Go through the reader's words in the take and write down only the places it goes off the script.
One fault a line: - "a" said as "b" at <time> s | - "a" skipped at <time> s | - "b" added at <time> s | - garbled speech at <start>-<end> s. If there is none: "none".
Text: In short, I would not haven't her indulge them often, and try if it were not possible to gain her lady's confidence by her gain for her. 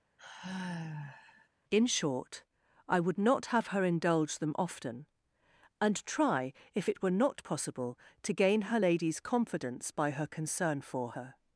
- "haven't" said as "have" at 3.5 s
- "gain" said as "concern" at 10.3 s